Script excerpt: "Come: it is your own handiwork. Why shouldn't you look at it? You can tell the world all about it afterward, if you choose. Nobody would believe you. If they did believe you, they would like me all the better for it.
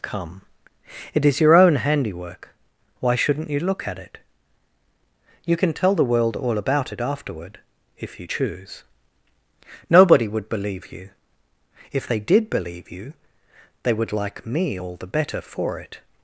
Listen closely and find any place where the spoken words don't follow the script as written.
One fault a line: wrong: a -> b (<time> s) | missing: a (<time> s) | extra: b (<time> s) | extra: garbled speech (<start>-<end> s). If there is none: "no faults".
no faults